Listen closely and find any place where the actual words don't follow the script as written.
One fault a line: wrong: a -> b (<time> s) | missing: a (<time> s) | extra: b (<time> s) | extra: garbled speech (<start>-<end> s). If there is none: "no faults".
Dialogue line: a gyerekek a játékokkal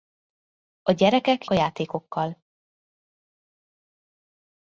no faults